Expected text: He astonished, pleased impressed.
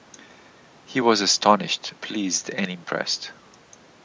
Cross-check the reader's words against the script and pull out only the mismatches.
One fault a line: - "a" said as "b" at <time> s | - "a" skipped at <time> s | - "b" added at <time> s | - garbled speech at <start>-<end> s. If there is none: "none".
- "was" added at 1.0 s
- "and" added at 2.5 s